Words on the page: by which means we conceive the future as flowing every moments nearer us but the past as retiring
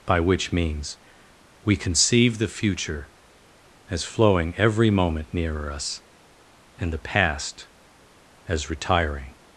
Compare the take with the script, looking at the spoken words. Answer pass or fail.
fail